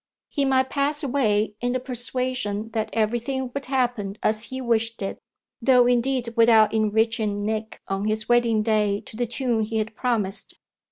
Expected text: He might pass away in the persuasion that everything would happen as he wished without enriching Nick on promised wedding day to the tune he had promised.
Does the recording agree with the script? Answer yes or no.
no